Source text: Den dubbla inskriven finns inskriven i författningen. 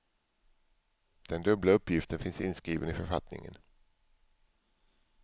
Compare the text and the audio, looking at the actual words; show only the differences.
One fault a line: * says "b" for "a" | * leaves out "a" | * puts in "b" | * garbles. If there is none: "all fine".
* says "uppgiften" for "inskriven"